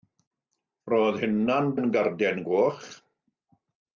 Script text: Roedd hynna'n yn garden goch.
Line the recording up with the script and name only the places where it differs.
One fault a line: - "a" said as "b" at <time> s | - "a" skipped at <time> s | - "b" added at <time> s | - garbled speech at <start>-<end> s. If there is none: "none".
none